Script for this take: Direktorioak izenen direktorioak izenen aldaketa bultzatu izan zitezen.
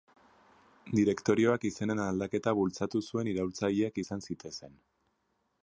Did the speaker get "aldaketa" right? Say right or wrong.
wrong